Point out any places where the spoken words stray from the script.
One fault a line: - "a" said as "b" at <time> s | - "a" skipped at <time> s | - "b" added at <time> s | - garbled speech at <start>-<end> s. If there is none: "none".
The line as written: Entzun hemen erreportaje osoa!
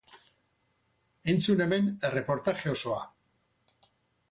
none